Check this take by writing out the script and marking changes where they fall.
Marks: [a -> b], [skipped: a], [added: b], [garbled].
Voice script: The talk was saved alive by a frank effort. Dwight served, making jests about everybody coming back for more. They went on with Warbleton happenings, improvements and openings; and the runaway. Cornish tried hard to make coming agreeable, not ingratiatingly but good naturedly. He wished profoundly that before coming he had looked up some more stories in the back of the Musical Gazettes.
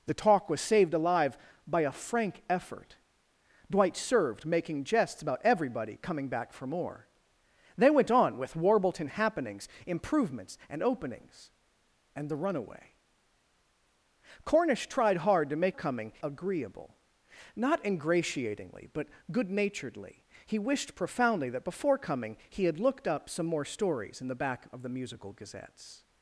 The talk was saved alive by a frank effort. Dwight served, making jests about everybody coming back for more. They went on with Warbleton happenings, improvements and openings; and the runaway. Cornish tried hard to make coming agreeable, not ingratiatingly but good naturedly. He wished profoundly that before coming he had looked up some more stories in the back of the Musical Gazettes.